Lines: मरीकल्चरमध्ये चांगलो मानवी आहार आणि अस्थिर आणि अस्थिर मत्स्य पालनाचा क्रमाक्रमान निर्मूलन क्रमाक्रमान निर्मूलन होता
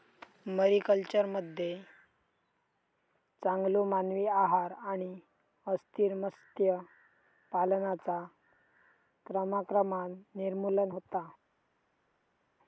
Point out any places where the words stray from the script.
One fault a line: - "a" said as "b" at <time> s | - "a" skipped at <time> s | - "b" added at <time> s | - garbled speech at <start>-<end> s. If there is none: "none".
- "आणि अस्थिर" skipped at 6.1 s
- "क्रमाक्रमान निर्मूलन" skipped at 10.9 s